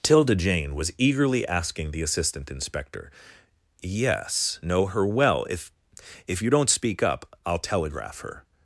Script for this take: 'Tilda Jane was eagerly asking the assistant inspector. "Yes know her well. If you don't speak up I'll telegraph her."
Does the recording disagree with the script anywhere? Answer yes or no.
yes